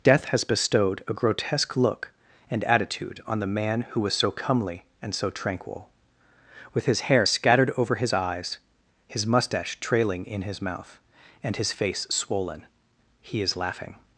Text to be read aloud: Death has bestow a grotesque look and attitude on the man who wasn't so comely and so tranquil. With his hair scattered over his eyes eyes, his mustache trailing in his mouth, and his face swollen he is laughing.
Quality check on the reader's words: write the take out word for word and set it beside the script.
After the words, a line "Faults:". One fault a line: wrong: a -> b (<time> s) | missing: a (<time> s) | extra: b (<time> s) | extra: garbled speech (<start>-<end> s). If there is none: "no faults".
Death has bestowed a grotesque look and attitude on the man who was so comely and so tranquil. With his hair scattered over his eyes, his mustache trailing in his mouth, and his face swollen he is laughing.
Faults:
wrong: bestow -> bestowed (0.4 s)
wrong: wasn't -> was (4.0 s)
missing: eyes (8.6 s)